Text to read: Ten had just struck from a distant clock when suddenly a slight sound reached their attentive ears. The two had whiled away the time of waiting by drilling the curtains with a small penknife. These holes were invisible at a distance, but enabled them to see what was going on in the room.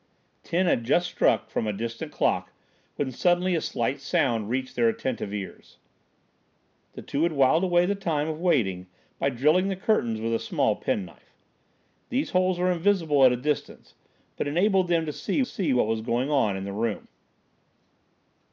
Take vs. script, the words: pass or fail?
fail